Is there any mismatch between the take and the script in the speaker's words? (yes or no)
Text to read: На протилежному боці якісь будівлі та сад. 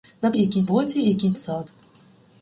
yes